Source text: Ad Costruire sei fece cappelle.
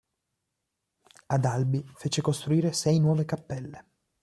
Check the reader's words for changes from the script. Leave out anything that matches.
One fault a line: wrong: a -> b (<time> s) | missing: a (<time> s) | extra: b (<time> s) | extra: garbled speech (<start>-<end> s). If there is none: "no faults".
extra: Albi fece (1.4 s)
wrong: fece -> nuove (3.0 s)